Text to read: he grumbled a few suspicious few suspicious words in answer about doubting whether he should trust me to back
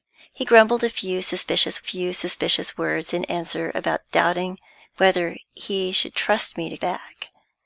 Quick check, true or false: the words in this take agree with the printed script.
true